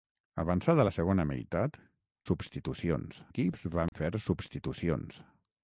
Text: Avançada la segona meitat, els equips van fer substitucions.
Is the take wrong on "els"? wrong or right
wrong